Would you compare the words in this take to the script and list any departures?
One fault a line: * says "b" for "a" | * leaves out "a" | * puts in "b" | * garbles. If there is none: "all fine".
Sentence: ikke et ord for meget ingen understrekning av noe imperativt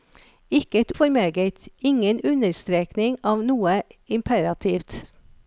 * leaves out "ord"